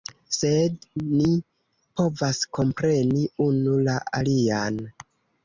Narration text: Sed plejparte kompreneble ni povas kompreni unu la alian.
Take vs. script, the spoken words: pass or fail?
fail